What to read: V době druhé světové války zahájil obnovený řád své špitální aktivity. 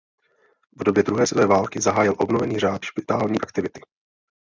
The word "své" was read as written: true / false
false